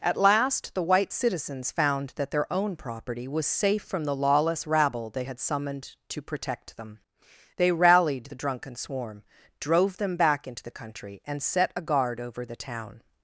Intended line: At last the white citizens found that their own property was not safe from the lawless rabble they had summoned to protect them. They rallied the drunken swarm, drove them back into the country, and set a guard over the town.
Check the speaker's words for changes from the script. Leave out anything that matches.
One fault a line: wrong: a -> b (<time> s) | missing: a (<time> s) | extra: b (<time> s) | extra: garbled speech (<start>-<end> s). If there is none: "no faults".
missing: not (3.5 s)